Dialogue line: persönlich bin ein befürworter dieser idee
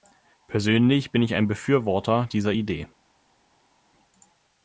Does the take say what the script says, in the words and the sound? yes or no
no